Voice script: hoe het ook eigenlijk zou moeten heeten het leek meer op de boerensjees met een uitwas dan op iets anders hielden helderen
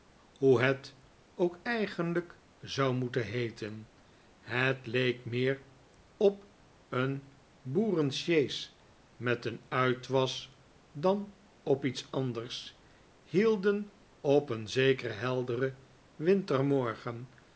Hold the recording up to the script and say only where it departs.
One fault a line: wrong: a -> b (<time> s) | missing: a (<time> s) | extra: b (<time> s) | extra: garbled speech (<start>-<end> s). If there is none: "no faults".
wrong: de -> een (6.9 s)
extra: op een zekeren (14.2 s)